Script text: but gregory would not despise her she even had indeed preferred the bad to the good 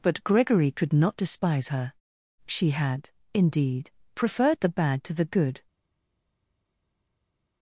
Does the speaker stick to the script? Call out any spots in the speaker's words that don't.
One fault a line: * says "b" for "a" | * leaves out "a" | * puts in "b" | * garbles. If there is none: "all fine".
* says "could" for "would"
* leaves out "even"